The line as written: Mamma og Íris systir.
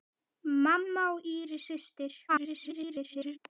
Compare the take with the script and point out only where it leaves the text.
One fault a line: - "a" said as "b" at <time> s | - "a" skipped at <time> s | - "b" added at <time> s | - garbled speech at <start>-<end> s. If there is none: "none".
- garbled speech at 2.3-3.4 s